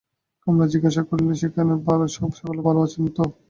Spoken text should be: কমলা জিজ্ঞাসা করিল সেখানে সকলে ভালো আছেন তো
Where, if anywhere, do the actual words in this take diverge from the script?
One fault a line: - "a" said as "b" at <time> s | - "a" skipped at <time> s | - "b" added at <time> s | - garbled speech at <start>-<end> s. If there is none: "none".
none